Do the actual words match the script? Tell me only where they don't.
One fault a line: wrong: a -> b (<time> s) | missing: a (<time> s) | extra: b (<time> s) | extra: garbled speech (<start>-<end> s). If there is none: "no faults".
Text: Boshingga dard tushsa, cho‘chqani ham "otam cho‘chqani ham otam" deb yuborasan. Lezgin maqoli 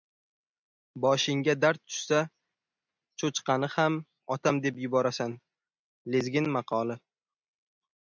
missing: cho‘chqani ham otam (4.6 s)